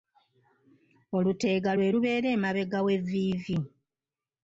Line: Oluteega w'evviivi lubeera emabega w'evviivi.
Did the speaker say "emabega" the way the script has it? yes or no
yes